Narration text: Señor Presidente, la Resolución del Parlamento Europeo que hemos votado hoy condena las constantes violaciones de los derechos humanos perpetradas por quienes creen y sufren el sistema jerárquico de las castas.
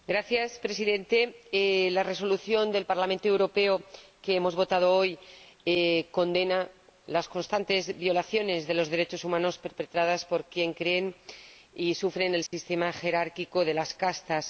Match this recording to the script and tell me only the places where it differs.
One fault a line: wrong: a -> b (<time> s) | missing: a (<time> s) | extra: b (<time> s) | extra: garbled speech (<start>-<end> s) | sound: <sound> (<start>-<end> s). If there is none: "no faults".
sound: dropout (12.5-12.5 s)